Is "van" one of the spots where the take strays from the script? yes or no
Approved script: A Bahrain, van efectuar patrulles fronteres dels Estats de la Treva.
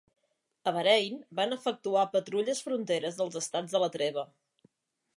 no